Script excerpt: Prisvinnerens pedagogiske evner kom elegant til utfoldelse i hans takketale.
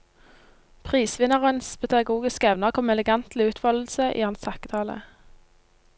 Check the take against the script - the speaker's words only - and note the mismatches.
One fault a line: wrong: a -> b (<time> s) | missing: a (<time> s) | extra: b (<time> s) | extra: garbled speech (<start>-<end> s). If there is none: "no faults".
no faults